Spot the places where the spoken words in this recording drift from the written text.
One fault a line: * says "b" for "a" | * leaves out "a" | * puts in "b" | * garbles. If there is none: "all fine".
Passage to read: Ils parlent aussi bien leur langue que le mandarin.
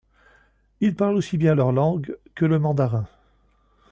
all fine